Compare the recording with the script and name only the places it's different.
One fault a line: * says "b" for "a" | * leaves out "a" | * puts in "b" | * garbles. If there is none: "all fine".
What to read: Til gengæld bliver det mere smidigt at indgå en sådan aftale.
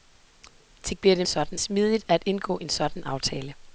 * leaves out "gengæld"
* says "sådan" for "mere"